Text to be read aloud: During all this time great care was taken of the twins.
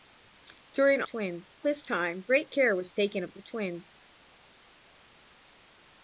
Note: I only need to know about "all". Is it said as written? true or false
false